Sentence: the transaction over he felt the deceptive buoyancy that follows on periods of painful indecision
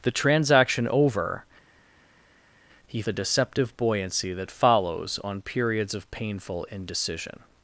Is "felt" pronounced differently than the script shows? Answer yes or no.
yes